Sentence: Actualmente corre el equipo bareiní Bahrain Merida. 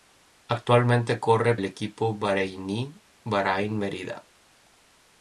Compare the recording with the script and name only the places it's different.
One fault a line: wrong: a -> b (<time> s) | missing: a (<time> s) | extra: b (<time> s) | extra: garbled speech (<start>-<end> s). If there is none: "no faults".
no faults